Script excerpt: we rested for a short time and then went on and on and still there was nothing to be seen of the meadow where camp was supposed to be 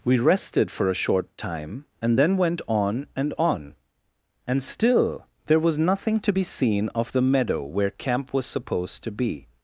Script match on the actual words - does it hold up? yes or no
yes